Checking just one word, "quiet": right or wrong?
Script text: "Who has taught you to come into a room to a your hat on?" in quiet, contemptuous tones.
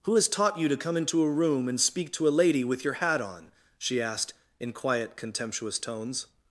right